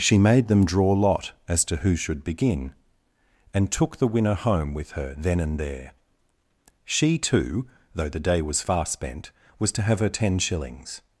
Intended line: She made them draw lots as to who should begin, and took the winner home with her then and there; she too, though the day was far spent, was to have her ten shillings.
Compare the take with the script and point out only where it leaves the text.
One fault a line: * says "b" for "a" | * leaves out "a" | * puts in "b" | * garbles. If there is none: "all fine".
* says "lot" for "lots"